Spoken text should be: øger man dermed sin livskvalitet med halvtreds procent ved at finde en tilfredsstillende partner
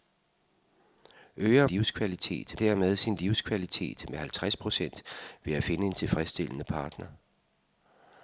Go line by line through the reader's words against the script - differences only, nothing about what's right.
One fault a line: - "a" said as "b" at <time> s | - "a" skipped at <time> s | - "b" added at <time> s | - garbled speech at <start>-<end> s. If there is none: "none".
- "man" said as "livskvalitet" at 1.6 s